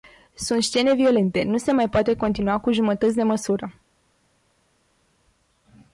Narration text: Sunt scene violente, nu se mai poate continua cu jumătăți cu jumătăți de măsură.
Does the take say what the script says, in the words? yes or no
no